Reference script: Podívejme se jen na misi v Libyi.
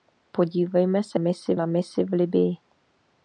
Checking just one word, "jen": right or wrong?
wrong